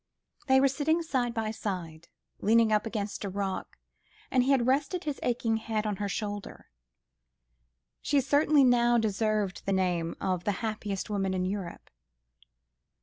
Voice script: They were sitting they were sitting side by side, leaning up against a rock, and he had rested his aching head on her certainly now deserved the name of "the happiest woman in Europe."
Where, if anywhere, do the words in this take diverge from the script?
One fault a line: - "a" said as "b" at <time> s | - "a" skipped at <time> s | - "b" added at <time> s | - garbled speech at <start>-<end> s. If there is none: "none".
- "they were sitting" skipped at 1.0 s
- "shoulder She" added at 6.1 s